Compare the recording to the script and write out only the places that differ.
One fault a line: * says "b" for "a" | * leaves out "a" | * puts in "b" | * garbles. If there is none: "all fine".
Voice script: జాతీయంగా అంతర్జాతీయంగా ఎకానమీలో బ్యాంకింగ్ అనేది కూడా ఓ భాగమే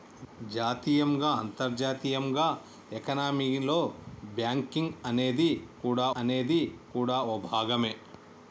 * puts in "అనేది కూడా"